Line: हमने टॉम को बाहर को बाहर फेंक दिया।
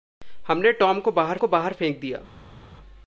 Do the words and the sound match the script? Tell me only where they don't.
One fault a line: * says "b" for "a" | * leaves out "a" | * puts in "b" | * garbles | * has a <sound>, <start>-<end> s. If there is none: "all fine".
all fine